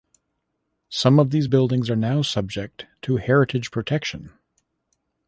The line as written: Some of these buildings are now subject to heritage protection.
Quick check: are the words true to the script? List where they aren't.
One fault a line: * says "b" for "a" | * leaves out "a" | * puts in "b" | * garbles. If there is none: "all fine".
all fine